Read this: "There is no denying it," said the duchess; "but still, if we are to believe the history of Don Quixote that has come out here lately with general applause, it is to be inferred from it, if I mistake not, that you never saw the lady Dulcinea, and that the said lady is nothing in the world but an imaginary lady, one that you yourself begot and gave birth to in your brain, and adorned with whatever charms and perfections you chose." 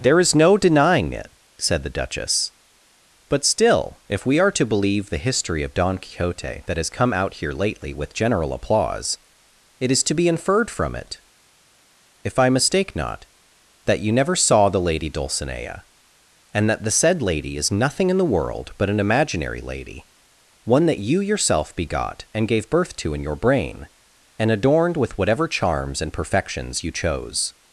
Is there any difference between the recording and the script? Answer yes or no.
no